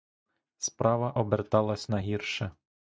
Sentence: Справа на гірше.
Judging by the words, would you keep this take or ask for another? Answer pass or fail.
fail